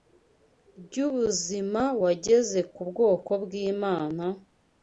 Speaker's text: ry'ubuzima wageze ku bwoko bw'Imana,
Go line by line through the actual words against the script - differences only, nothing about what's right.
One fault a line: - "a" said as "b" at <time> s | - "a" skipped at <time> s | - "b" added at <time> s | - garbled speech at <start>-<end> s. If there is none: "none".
none